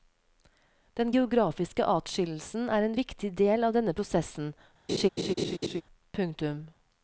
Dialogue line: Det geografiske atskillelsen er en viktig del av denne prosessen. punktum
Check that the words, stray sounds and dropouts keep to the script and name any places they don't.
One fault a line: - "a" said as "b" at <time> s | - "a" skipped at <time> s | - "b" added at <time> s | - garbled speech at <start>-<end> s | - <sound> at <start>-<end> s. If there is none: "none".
- "Det" said as "Den" at 1.0 s
- laugh at 4.9-5.8 s